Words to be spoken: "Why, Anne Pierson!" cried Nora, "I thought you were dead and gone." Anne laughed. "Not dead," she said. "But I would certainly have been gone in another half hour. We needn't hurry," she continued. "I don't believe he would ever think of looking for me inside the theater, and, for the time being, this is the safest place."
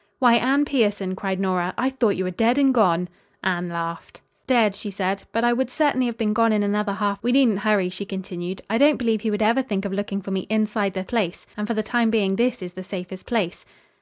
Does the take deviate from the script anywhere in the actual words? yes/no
yes